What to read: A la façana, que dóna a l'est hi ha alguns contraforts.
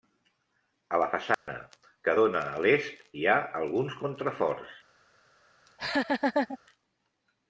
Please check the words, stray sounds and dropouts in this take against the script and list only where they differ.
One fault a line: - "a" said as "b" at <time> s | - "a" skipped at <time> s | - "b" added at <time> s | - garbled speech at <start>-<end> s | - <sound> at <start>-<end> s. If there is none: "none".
- dropout at 1.3-1.5 s
- laugh at 5.7-6.6 s